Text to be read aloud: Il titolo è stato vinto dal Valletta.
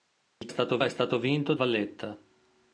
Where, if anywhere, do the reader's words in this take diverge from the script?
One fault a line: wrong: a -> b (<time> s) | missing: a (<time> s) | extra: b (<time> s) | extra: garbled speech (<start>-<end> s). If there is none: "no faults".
wrong: titolo -> stato (0.5 s)
missing: dal (1.5 s)